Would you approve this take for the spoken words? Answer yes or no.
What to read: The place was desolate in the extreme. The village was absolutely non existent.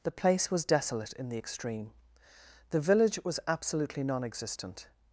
yes